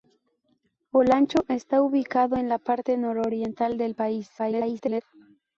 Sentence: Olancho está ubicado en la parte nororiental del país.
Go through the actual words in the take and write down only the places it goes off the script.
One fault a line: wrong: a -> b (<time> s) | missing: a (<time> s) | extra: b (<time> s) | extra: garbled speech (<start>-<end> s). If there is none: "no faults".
extra: garbled speech (4.4-5.0 s)